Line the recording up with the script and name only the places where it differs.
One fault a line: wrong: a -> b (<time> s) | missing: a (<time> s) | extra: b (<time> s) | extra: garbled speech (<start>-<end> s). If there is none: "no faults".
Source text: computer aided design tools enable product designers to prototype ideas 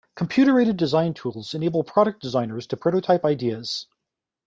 no faults